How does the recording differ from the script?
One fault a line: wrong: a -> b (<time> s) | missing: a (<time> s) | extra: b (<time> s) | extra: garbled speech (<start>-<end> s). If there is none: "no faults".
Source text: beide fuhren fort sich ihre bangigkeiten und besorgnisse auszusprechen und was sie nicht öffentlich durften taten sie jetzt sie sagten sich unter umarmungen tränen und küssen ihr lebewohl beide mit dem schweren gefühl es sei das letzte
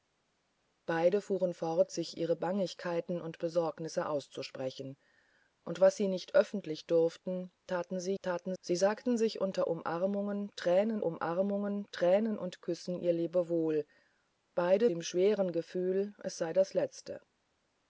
wrong: jetzt -> taten (8.2 s)
extra: umarmungen tränen (11.0 s)
missing: mit (14.9 s)